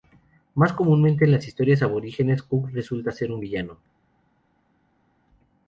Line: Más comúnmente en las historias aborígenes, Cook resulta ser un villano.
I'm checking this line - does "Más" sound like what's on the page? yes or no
yes